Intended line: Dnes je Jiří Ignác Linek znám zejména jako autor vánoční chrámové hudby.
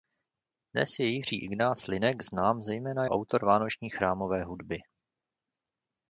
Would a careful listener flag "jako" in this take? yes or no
yes